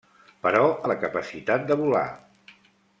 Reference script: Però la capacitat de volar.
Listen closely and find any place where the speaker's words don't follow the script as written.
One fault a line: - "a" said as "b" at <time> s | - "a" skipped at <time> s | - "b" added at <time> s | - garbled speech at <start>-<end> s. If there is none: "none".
none